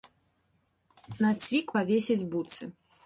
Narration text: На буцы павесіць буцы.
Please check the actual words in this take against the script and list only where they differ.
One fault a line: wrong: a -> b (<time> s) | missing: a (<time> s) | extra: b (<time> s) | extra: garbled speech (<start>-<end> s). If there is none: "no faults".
wrong: буцы -> цвік (1.4 s)